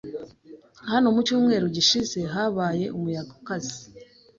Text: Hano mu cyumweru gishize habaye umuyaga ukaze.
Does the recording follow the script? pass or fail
pass